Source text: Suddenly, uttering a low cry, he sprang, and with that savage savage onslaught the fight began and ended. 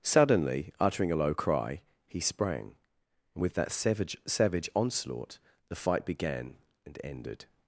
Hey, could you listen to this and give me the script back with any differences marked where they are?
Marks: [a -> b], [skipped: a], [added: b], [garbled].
Suddenly, uttering a low cry, he sprang, and with that savage savage onslaught the fight began and ended.